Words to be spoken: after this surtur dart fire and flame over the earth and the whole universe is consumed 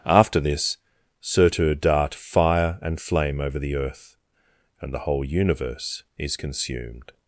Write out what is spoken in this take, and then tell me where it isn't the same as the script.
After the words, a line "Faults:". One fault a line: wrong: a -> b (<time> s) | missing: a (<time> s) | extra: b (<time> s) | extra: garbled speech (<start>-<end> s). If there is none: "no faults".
after this surtur dart fire and flame over the earth and the whole universe is consumed
Faults:
no faults